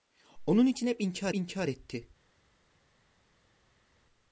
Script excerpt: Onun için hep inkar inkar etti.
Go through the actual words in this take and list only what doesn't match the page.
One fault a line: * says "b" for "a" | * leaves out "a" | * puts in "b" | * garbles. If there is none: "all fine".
all fine